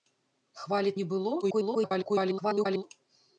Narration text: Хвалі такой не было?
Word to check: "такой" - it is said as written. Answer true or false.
false